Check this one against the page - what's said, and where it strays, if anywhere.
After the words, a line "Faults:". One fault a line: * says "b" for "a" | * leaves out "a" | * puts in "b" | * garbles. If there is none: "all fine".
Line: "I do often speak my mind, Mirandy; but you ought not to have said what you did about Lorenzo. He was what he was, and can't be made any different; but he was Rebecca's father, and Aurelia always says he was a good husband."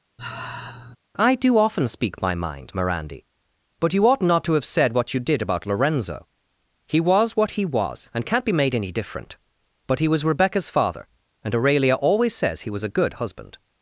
"I do often speak my mind, Mirandy; but you ought not to have said what you did about Lorenzo. He was what he was, and can't be made any different; but he was Rebecca's father, and Aurelia always says he was a good husband."
Faults:
all fine